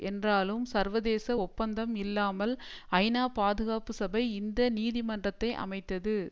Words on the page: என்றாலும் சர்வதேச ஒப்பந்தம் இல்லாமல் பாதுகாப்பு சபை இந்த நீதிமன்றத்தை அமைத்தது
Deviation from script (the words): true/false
true